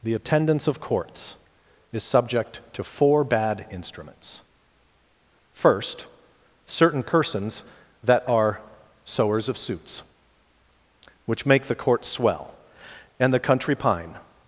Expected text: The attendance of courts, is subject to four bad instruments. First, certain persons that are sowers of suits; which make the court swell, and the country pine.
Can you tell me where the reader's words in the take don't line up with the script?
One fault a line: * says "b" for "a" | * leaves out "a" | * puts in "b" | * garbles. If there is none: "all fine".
all fine